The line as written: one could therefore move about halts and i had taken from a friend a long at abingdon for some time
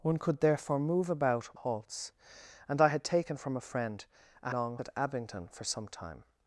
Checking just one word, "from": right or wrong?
right